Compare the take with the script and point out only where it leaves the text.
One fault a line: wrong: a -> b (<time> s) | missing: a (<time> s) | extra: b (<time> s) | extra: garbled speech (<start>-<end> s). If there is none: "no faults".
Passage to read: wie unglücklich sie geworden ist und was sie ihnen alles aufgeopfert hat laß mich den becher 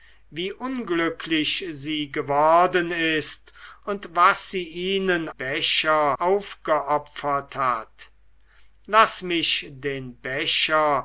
wrong: alles -> becher (5.3 s)